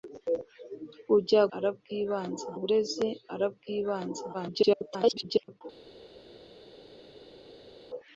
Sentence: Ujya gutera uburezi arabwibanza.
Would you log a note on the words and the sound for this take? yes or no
yes